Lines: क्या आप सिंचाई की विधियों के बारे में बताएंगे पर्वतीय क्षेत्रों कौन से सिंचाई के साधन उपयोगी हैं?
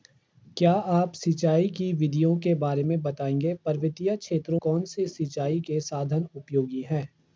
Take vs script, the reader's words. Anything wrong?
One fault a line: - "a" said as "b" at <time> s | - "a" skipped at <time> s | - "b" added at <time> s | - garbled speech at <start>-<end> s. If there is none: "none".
none